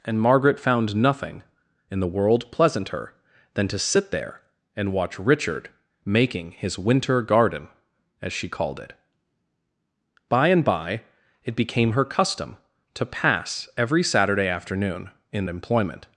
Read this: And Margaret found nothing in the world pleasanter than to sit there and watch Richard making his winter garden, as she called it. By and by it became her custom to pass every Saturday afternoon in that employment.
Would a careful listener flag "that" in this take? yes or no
yes